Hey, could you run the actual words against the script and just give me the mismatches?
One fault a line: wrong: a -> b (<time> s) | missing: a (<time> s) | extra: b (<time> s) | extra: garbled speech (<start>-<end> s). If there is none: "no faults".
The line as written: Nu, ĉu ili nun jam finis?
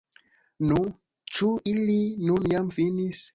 no faults